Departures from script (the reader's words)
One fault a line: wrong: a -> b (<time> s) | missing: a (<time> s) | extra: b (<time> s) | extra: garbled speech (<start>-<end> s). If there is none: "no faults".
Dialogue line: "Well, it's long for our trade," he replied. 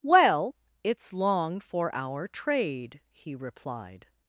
no faults